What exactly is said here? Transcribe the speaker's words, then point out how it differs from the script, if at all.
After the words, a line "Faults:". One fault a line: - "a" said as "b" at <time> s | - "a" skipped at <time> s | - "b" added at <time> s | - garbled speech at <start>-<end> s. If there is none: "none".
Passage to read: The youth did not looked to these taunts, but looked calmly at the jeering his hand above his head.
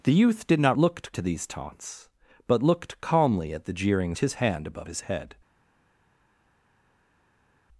The youth did not looked to these taunts, but looked calmly at the jeering his hand above his head.
Faults:
none